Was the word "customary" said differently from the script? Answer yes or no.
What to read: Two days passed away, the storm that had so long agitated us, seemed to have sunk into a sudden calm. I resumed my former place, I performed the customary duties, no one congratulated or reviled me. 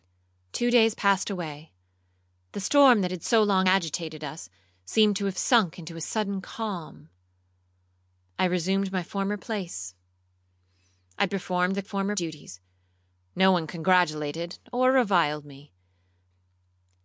yes